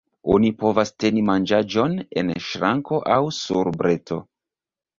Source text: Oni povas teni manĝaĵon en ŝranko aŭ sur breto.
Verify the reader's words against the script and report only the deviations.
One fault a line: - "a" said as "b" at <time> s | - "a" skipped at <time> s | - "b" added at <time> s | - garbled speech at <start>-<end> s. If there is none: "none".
none